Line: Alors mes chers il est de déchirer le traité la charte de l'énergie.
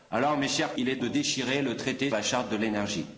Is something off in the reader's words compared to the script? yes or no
no